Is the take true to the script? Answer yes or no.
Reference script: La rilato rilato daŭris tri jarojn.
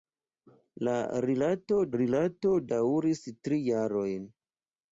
yes